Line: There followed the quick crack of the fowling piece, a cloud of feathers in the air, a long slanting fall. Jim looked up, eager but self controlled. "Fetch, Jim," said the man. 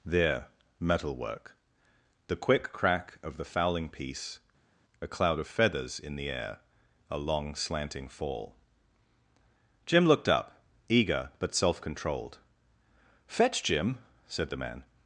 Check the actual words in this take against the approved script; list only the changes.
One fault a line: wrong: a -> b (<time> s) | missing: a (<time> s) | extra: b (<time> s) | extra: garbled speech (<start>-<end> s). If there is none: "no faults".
wrong: followed -> metalwork (0.8 s)